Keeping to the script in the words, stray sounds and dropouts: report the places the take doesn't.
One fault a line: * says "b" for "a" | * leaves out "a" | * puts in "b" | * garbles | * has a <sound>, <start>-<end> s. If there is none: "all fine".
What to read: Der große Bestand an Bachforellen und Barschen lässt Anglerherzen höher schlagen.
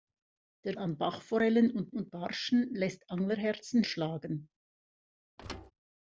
* leaves out "große Bestand"
* puts in "und"
* leaves out "höher"
* has a thud, 5.4-5.7 s